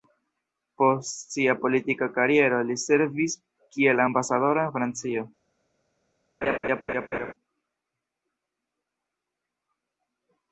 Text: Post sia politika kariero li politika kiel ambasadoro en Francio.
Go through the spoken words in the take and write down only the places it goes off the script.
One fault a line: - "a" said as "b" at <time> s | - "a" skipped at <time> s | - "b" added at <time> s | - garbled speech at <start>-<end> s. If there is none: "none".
- "politika" said as "servis" at 2.9 s